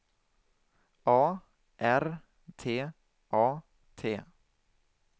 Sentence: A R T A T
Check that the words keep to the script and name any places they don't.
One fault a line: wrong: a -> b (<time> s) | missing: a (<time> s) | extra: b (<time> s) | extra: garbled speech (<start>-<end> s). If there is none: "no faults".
no faults